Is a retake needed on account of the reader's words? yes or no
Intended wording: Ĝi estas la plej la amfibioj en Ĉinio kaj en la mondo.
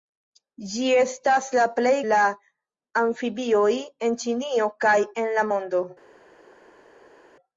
no